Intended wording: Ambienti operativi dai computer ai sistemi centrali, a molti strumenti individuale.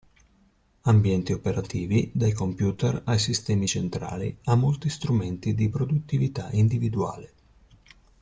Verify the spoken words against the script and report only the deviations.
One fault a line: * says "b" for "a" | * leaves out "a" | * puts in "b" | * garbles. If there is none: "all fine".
* puts in "di produttività"